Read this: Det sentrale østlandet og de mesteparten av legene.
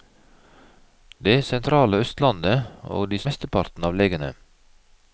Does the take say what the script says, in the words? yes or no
yes